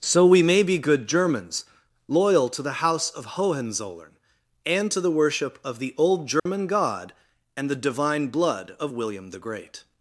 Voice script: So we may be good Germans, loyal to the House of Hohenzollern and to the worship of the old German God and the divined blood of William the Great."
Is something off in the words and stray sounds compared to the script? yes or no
yes